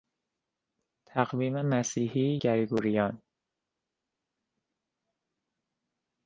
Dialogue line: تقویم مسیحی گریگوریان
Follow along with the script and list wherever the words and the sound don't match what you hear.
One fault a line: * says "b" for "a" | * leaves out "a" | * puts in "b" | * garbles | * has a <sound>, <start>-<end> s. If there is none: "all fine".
all fine